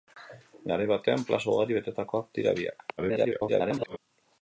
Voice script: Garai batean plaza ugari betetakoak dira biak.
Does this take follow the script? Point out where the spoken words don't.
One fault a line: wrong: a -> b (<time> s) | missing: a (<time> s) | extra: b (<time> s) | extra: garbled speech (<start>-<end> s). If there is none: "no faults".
extra: garbled speech (3.0-4.0 s)